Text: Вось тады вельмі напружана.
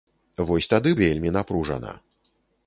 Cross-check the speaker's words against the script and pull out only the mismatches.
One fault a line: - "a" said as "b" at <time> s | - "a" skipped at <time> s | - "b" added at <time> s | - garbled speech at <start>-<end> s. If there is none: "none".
none